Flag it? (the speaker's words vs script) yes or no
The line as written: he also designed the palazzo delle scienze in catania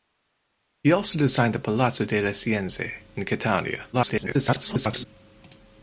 yes